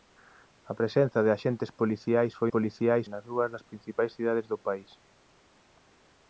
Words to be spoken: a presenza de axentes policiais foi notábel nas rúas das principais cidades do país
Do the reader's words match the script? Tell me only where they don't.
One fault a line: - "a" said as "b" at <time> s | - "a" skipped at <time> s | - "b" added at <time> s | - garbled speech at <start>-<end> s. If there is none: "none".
- "notábel" said as "policiais" at 2.5 s